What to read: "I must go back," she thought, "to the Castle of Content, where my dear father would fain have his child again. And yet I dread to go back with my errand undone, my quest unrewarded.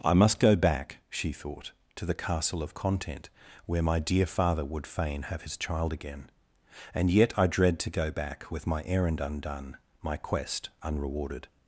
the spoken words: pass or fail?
pass